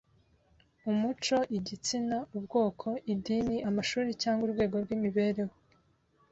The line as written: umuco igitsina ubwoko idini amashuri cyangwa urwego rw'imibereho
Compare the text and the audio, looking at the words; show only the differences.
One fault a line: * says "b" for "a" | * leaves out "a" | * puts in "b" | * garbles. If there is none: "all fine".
all fine